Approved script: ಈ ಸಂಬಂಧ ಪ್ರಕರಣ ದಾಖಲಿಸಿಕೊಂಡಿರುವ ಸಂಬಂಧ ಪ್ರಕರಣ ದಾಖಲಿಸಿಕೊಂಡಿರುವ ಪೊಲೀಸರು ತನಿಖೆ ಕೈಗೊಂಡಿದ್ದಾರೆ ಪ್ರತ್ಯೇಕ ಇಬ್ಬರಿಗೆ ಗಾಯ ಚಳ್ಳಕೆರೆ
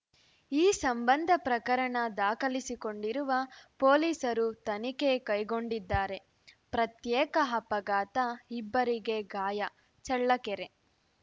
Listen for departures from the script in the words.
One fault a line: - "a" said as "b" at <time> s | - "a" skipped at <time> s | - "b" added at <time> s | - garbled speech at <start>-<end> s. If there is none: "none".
- "ಸಂಬಂಧ ಪ್ರಕರಣ ದಾಖಲಿಸಿಕೊಂಡಿರುವ" skipped at 3.3 s
- "ಅಪಘಾತ" added at 7.5 s